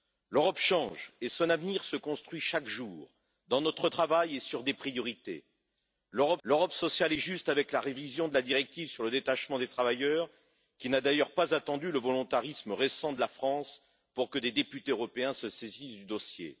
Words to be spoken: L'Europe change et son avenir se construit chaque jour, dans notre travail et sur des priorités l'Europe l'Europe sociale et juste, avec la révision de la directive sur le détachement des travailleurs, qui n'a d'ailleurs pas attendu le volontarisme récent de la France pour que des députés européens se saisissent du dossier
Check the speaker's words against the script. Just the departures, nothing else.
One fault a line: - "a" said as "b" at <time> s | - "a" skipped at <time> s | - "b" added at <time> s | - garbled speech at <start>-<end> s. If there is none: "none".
none